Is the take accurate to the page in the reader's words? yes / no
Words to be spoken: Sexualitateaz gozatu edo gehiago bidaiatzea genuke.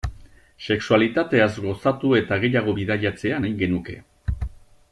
no